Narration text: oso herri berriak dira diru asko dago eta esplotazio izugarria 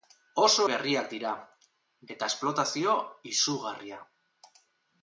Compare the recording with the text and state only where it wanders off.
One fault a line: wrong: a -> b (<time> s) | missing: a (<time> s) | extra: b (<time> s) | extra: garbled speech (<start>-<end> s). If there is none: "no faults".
missing: herri (0.6 s)
missing: diru asko dago (1.3 s)